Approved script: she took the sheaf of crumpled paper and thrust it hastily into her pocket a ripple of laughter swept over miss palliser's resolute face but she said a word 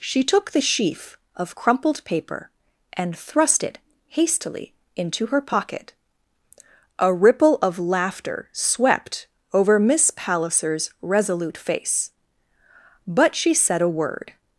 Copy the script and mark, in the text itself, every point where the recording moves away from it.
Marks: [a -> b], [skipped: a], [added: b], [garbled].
she took the sheaf of crumpled paper and thrust it hastily into her pocket a ripple of laughter swept over miss palliser's resolute face but she said a word